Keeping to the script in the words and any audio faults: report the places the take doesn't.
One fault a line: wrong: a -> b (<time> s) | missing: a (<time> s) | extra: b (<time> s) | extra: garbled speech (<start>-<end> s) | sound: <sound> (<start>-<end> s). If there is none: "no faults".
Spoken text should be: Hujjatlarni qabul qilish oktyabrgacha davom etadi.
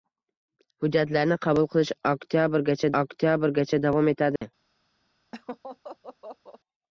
extra: oktyabrgacha (3.0 s)
sound: dropout (4.4-4.4 s)
sound: laugh (5.3-6.6 s)